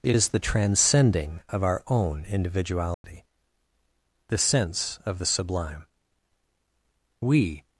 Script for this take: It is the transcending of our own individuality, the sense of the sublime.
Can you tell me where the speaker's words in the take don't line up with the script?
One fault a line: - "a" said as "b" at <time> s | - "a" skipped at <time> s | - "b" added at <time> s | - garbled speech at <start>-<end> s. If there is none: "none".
- "We" added at 7.2 s